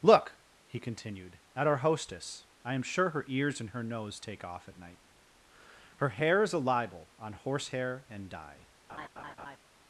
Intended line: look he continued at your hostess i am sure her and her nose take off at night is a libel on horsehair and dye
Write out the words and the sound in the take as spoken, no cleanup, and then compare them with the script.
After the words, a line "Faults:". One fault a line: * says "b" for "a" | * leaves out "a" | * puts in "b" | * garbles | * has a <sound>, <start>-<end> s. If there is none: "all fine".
look he continued at our hostess i am sure her ears and her nose take off at night her hair is a libel on horsehair and dye
Faults:
* says "our" for "your"
* puts in "ears"
* puts in "her hair"
* has a laugh, 8.9-9.6 s